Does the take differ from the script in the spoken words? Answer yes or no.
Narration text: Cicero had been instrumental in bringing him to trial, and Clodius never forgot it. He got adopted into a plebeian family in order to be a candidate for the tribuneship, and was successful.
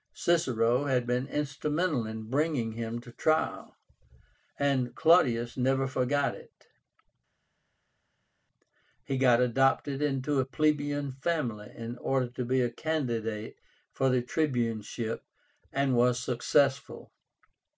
no